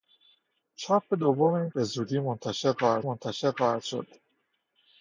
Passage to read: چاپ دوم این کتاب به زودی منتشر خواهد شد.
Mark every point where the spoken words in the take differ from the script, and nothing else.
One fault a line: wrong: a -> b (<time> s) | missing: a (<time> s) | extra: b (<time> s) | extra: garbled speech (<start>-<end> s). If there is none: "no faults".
missing: کتاب (1.7 s)
extra: منتشر خواهد (3.0 s)